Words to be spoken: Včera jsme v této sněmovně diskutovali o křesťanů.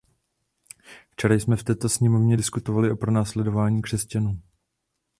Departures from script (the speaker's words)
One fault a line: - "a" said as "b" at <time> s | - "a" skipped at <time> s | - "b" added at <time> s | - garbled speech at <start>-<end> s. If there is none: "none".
- "pronásledování" added at 3.0 s